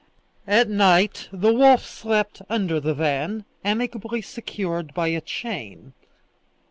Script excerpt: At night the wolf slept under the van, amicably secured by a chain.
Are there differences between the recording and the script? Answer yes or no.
no